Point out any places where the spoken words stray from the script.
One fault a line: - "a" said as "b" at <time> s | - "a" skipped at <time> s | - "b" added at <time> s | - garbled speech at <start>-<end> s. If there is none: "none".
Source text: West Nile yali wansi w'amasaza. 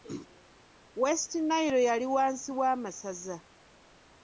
none